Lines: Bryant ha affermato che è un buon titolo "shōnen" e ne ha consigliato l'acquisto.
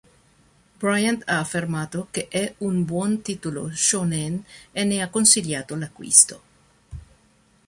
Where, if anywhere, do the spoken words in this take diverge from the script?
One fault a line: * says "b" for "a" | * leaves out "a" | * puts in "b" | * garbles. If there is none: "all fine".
all fine